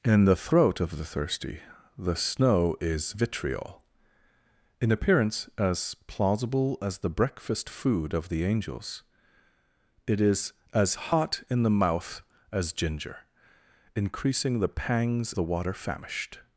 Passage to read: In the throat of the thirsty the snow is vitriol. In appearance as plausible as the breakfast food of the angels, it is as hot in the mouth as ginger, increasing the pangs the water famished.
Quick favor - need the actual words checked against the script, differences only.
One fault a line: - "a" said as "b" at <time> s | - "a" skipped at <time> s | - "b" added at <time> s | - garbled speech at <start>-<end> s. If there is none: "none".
none